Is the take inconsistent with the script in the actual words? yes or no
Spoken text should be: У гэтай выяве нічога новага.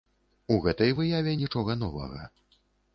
no